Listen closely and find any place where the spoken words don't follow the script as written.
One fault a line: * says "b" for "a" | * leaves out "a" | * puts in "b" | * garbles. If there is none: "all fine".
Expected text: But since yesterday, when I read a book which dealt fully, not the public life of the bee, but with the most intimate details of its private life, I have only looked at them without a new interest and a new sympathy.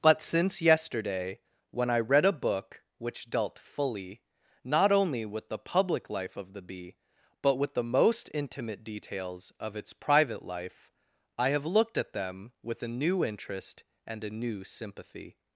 * puts in "only with"
* leaves out "only"
* says "with" for "without"